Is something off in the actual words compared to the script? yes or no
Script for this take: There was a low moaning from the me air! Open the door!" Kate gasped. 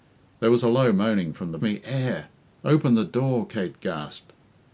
no